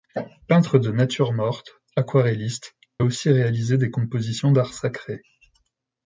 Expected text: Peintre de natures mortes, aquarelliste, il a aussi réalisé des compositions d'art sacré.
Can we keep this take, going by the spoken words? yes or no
no